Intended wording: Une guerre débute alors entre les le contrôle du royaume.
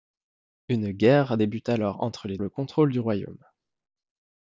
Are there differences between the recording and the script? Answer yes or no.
no